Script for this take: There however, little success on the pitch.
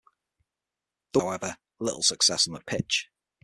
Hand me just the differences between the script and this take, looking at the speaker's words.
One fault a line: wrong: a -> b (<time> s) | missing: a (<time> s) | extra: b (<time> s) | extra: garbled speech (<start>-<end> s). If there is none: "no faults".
no faults